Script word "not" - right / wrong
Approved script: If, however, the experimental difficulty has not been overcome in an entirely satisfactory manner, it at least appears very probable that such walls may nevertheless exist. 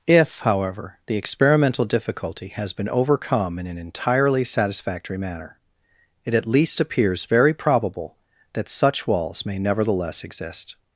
wrong